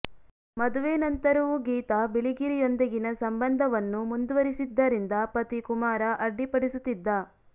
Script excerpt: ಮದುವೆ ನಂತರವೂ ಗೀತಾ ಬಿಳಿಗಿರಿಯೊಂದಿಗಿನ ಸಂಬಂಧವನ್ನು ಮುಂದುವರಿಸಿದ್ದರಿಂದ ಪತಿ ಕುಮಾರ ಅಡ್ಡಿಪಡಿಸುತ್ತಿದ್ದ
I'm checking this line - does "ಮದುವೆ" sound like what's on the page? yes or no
yes